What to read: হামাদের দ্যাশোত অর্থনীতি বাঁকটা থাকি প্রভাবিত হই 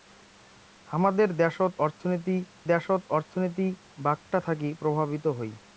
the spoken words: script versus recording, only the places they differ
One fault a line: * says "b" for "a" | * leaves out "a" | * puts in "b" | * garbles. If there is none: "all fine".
* puts in "দ্যাশোত অর্থনীতি"